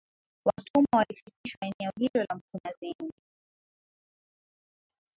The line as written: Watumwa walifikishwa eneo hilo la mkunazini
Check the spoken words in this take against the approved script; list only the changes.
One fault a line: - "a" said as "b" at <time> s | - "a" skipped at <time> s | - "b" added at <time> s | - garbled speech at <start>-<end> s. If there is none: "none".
none